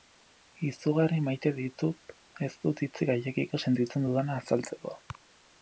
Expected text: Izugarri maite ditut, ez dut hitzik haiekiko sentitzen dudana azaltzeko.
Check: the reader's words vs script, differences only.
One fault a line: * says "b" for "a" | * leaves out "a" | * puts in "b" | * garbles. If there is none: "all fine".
all fine